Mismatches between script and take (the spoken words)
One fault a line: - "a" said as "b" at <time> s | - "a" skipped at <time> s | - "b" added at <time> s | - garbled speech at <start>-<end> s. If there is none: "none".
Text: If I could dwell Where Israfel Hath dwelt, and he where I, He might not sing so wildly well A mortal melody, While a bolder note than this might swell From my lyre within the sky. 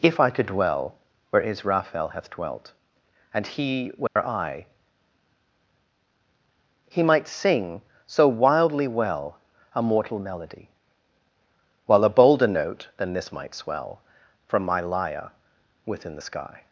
- "not" skipped at 7.3 s